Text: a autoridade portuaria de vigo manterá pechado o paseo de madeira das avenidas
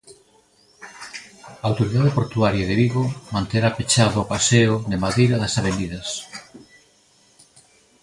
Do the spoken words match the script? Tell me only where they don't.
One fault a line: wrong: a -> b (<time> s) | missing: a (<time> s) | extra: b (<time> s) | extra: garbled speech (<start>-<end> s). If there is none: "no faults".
no faults